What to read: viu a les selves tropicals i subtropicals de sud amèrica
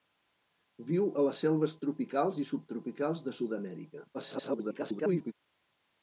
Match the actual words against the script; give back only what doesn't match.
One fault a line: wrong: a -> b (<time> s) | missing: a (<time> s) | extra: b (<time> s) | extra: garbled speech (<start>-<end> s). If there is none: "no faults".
extra: garbled speech (4.1-5.3 s)